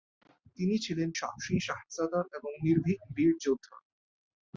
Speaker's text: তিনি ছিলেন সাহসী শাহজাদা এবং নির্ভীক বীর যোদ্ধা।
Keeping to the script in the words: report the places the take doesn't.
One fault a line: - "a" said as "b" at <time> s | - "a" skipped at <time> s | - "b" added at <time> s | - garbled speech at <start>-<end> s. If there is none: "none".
none